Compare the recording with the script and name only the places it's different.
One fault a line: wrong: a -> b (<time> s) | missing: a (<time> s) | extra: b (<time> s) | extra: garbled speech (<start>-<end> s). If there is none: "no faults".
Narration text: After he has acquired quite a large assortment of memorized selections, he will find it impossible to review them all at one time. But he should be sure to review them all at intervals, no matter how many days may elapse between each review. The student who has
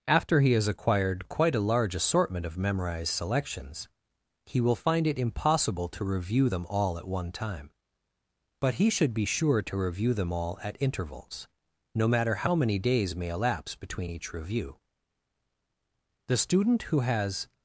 no faults